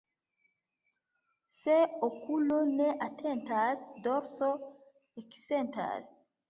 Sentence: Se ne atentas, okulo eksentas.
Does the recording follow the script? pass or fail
fail